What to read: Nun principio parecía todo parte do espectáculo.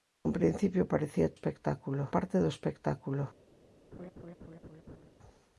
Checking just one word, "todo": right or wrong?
wrong